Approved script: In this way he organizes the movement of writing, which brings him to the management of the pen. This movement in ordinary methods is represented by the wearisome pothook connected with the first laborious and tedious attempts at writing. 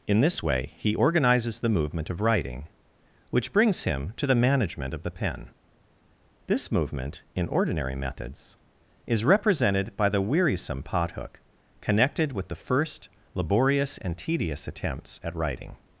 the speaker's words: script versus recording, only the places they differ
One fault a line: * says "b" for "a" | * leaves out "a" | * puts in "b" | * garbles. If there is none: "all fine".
all fine